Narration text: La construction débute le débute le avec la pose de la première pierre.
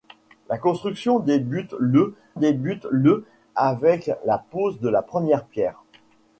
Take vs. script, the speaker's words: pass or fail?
pass